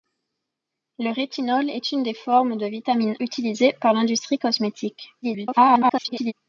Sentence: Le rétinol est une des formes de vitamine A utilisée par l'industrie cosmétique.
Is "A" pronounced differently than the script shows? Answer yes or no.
yes